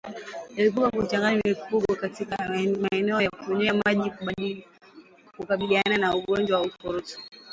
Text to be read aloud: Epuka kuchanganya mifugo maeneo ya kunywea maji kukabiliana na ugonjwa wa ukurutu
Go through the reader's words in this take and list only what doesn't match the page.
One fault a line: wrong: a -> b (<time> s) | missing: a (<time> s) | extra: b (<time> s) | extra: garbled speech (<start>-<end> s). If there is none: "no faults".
extra: katika (1.9 s)